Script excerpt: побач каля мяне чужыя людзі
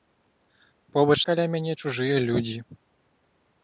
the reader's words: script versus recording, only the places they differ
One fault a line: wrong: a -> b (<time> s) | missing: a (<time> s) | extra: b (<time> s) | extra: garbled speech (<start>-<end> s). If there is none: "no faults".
no faults